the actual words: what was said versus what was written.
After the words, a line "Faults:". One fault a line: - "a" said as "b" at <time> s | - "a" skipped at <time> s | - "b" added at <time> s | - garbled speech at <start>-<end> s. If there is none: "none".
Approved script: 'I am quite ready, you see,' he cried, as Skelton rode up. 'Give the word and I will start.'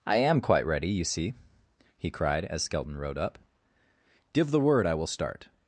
'I am quite ready, you see,' he cried, as Skelton rode up. 'Give the word I will start.'
Faults:
- "and" skipped at 4.9 s